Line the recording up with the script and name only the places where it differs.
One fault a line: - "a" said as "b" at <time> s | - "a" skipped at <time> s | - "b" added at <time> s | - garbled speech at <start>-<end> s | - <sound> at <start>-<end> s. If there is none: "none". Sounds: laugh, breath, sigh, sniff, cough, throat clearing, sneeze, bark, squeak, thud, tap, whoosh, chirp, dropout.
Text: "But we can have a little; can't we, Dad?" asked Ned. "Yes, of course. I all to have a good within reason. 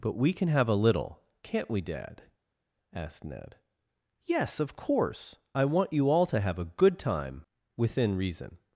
- "want you" added at 5.7 s
- "time" added at 7.0 s